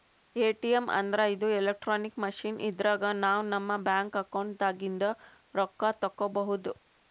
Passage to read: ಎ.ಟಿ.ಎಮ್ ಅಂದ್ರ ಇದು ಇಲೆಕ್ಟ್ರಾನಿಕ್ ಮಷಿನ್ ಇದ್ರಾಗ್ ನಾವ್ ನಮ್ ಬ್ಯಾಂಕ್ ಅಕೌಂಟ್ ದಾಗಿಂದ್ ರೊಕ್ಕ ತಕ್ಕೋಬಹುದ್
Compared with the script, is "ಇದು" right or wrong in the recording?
right